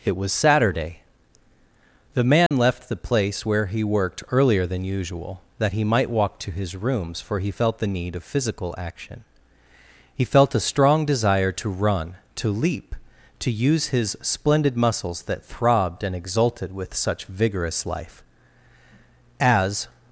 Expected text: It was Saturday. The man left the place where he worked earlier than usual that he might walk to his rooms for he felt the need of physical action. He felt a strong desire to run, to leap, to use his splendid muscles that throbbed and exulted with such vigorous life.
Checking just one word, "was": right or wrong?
right